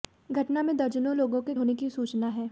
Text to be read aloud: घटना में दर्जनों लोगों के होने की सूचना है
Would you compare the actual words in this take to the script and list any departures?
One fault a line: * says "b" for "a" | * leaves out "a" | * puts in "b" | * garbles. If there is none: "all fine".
all fine